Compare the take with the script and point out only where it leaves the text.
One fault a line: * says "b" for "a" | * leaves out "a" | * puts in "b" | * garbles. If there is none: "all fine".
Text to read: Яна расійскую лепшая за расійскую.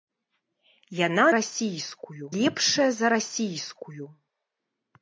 all fine